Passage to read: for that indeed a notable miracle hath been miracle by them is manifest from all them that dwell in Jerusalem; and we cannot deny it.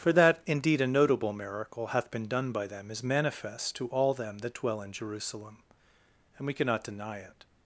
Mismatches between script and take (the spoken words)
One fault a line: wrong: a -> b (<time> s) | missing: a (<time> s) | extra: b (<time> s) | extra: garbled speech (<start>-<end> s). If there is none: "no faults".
wrong: miracle -> done (2.3 s)
wrong: from -> to (3.8 s)